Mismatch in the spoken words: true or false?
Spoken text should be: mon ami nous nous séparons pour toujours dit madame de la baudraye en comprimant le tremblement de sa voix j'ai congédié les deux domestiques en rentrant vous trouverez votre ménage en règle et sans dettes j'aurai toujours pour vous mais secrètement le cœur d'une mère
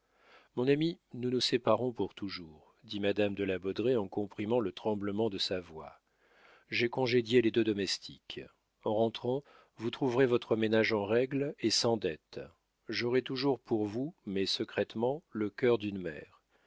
false